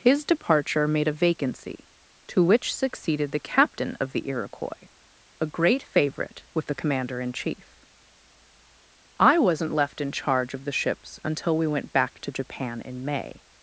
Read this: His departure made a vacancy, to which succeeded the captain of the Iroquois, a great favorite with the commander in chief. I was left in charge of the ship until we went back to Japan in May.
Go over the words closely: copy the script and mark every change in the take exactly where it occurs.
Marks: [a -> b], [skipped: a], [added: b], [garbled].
His departure made a vacancy, to which succeeded the captain of the Iroquois, a great favorite with the commander in chief. I [was -> wasn't] left in charge of the [ship -> ships] until we went back to Japan in May.